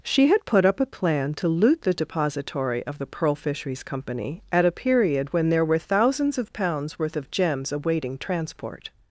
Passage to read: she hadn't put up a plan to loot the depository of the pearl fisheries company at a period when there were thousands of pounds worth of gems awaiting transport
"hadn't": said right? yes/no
no